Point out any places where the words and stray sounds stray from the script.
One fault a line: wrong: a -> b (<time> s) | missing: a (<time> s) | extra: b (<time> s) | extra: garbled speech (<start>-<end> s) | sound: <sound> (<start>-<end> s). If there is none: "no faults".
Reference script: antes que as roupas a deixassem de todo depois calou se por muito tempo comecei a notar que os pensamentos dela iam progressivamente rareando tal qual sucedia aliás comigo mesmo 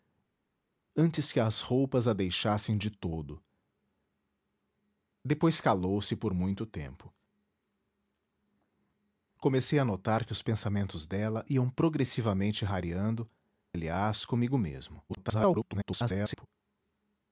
missing: tal qual sucedia (13.3 s)
extra: garbled speech (15.1-16.5 s)